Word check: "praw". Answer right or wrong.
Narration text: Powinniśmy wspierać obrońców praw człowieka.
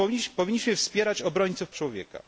wrong